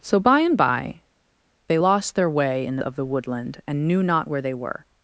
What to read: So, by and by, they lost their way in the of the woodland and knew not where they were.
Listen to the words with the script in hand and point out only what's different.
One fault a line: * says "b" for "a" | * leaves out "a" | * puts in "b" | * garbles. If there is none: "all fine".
all fine